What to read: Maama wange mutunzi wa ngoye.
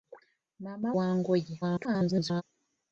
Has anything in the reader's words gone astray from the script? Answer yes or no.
yes